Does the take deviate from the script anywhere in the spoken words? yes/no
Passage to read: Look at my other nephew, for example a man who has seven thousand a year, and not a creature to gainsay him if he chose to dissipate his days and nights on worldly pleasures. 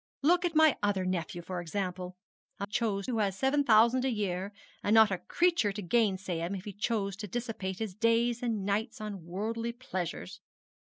yes